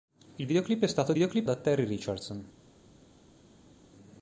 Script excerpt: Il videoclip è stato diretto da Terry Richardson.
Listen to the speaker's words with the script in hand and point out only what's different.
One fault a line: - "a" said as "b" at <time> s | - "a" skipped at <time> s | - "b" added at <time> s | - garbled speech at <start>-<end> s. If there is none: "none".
- "diretto" said as "videoclip" at 1.1 s